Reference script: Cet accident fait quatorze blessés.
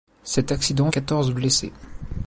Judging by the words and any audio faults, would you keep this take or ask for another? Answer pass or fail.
fail